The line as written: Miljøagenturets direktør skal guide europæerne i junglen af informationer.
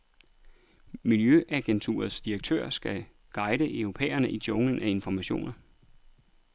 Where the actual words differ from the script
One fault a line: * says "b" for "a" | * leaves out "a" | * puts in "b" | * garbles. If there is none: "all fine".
all fine